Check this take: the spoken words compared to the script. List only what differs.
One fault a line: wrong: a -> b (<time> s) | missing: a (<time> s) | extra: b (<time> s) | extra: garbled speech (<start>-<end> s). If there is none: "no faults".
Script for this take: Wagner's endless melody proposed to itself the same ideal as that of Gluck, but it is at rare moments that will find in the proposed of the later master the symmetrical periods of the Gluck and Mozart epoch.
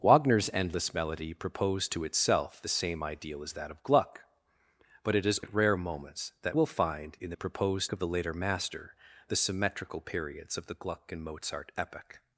no faults